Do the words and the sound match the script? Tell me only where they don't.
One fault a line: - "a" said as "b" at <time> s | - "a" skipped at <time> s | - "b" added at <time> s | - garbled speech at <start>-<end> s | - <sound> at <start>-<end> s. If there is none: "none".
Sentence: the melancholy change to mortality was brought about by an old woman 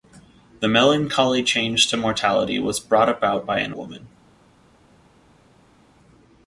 - "old" skipped at 3.7 s